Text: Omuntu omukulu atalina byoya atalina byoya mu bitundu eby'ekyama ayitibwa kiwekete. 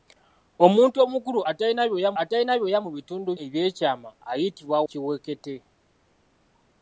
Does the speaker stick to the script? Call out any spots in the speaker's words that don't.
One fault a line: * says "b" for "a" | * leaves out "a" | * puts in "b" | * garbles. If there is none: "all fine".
all fine